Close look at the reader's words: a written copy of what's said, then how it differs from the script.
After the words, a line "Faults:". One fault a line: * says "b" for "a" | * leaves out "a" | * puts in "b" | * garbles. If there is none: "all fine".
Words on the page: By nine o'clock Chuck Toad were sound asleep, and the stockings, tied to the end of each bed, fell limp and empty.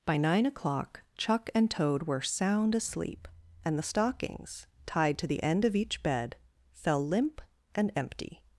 By nine o'clock Chuck and Toad were sound asleep, and the stockings, tied to the end of each bed, fell limp and empty.
Faults:
* puts in "and"